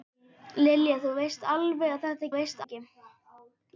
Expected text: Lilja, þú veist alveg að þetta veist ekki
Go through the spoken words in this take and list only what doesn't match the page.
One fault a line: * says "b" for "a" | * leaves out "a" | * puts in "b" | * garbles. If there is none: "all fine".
all fine